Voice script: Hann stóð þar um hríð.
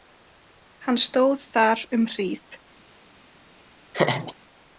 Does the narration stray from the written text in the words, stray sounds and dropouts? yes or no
yes